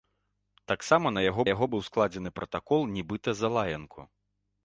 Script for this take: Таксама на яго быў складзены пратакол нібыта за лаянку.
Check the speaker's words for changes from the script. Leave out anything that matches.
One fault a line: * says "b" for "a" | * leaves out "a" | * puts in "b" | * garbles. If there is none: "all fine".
* puts in "яго"